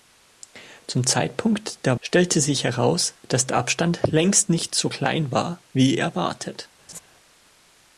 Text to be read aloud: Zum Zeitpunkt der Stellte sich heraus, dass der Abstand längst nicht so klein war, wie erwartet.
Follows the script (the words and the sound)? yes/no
no